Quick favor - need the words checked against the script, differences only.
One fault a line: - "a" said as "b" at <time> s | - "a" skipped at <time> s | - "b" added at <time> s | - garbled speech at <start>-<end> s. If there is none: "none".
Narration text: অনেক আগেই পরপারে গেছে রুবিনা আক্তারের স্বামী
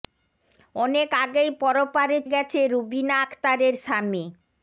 none